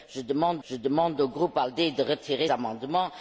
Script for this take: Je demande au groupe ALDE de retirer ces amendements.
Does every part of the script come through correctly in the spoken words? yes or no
no